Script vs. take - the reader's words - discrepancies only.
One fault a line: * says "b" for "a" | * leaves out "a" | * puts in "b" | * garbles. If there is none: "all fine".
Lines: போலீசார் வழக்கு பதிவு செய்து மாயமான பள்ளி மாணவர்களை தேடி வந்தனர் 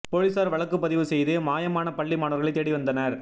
all fine